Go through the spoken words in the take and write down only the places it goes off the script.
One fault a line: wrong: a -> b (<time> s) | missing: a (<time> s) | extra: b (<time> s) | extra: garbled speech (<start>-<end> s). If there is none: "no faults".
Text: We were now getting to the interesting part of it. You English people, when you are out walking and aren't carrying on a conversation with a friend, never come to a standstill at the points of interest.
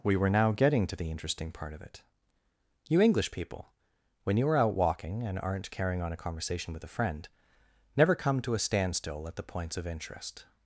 no faults